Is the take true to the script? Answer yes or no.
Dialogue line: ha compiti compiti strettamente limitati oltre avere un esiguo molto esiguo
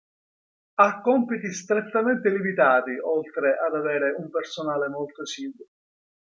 no